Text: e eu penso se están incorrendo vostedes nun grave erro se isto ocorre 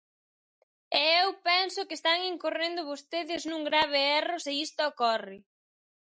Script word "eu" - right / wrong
right